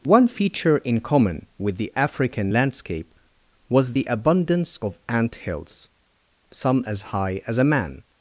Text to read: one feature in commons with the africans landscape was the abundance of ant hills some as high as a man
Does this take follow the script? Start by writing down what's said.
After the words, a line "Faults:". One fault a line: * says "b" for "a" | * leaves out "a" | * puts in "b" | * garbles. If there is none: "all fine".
one feature in common with the african landscape was the abundance of ant hills some as high as a man
Faults:
* says "common" for "commons"
* says "african" for "africans"